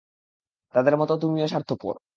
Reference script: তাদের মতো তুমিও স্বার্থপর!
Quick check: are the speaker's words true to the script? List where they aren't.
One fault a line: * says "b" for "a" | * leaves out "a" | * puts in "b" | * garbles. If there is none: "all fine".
all fine